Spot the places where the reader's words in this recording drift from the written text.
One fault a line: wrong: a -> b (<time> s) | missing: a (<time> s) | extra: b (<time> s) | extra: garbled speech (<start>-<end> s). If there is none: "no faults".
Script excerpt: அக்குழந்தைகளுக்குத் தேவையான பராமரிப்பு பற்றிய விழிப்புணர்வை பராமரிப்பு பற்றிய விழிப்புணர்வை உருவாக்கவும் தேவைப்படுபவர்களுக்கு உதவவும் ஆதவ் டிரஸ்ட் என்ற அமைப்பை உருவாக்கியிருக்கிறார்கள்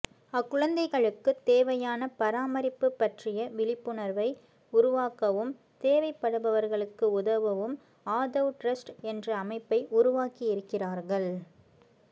missing: பராமரிப்பு பற்றிய விழிப்புணர்வை (4.3 s)